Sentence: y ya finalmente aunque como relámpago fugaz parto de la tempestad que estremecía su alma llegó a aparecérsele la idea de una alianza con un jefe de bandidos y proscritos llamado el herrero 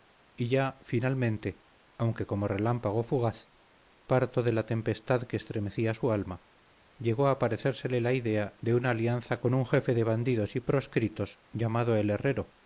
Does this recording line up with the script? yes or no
yes